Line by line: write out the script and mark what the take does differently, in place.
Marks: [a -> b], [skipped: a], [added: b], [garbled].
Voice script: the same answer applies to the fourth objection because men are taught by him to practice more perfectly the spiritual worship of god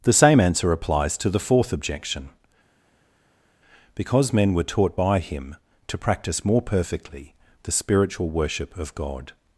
the same answer applies to the fourth objection because men [are -> were] taught by him to practice more perfectly the spiritual worship of god